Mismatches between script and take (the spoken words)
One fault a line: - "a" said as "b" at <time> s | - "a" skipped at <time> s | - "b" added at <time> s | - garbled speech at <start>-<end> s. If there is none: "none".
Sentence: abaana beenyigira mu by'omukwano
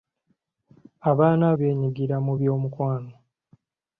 none